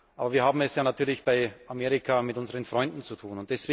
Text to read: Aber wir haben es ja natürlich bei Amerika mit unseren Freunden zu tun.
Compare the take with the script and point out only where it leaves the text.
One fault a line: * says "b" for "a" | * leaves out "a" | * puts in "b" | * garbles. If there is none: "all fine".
all fine